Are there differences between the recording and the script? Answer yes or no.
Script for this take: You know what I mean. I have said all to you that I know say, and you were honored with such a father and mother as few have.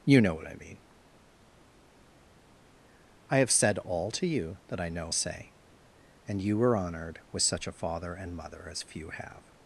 no